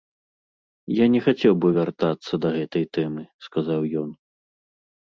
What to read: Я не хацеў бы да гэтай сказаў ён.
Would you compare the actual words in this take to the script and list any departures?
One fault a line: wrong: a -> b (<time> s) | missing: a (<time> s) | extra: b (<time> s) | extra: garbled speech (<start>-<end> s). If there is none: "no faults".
extra: вяртацца (1.8 s)
extra: тэмы (3.0 s)